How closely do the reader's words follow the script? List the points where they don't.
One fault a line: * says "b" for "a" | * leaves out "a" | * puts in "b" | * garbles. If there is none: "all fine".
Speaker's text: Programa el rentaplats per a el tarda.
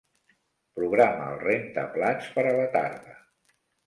* says "la" for "el"